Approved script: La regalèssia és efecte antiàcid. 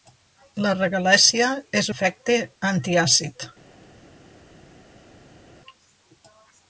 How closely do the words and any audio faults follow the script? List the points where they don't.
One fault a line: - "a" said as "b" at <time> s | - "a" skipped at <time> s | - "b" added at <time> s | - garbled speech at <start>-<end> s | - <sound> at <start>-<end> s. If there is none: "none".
none